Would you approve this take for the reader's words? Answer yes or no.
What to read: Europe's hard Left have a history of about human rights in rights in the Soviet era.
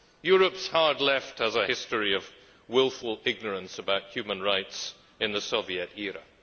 no